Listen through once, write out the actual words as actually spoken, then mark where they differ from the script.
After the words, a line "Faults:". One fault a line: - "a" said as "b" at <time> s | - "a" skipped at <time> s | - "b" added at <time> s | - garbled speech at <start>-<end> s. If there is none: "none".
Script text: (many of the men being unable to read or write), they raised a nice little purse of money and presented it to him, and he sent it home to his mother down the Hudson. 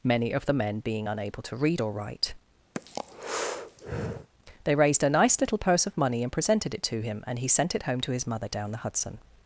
(many of the men being unable to read or write), they raised a nice little purse of money and presented it to him, and he sent it home to his mother down the Hudson.
Faults:
none